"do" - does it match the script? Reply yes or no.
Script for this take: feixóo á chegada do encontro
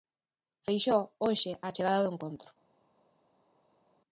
yes